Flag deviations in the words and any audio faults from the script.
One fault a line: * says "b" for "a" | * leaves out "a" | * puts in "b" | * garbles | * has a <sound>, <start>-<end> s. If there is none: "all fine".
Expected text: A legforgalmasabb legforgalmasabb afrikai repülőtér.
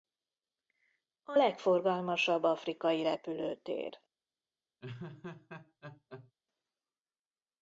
* leaves out "legforgalmasabb"
* has a laugh, 4.8-6.3 s